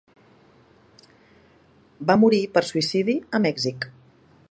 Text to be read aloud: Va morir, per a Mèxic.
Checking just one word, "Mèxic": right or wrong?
right